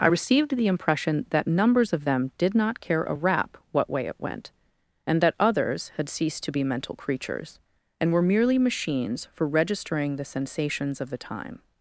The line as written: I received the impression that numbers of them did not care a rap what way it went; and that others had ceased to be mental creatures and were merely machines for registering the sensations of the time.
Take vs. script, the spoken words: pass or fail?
pass